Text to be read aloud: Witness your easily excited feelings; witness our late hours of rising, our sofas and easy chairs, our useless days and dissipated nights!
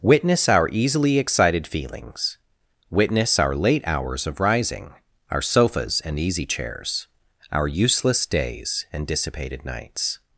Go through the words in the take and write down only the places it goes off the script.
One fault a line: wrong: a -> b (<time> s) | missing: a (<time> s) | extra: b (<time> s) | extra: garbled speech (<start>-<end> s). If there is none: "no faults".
wrong: your -> our (0.5 s)